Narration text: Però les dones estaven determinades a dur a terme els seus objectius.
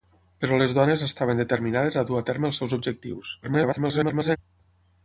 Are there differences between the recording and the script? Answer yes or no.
yes